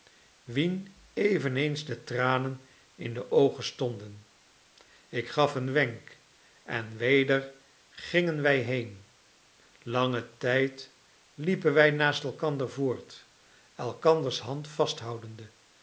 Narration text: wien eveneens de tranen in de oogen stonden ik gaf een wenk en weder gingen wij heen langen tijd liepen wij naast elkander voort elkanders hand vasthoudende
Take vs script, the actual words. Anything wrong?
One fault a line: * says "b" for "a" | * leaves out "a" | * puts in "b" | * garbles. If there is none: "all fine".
all fine